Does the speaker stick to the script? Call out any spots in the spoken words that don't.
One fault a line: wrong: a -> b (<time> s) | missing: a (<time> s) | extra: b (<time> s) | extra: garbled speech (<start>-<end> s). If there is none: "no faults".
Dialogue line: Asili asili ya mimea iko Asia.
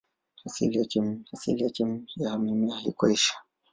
no faults